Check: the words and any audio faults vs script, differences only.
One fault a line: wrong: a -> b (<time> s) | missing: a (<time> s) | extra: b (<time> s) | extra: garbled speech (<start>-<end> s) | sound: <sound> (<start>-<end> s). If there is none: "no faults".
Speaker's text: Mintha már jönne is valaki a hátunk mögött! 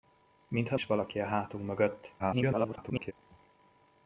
missing: már jönne (0.8 s)
extra: garbled speech (2.2-3.1 s)